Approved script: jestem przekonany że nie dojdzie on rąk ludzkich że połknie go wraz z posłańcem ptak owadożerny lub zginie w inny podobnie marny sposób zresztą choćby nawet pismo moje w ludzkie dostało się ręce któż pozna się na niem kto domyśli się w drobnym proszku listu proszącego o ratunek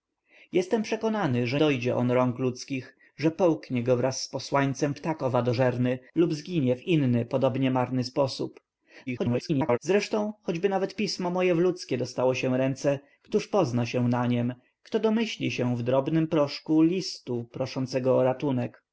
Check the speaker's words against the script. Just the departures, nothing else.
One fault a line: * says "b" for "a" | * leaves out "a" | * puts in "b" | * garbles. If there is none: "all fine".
* leaves out "nie"
* garbles